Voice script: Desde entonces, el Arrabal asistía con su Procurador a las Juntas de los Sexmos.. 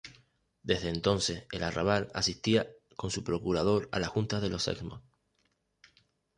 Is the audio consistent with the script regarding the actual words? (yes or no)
yes